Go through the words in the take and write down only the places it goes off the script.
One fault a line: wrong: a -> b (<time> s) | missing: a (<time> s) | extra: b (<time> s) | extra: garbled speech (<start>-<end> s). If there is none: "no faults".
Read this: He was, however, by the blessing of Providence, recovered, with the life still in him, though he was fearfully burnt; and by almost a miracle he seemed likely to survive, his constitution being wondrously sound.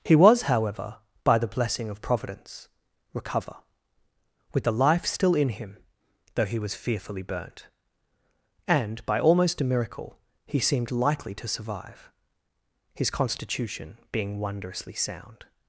wrong: recovered -> recover (3.1 s)